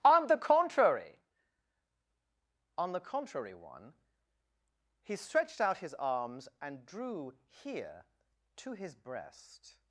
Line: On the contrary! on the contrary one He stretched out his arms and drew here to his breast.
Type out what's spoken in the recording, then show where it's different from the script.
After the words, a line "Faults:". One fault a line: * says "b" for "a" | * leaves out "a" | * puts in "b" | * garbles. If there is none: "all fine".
On the contrary! on the contrary one He stretched out his arms and drew here to his breast.
Faults:
all fine